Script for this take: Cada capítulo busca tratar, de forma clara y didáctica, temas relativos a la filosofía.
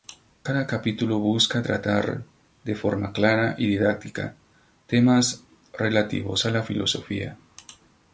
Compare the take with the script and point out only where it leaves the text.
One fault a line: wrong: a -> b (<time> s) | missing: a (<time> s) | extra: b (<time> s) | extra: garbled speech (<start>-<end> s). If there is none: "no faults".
no faults